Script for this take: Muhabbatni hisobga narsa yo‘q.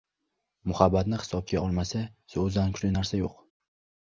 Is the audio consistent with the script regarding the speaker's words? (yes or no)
no